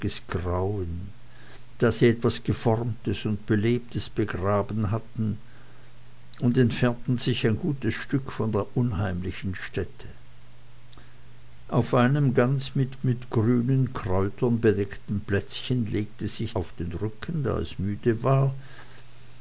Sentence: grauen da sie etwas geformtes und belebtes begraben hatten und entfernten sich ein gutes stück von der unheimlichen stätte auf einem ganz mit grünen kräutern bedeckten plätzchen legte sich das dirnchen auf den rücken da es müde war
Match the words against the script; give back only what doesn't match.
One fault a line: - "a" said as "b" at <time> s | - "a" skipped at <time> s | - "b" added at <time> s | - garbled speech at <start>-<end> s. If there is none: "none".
- "mit" added at 13.0 s
- "das dirnchen" skipped at 16.6 s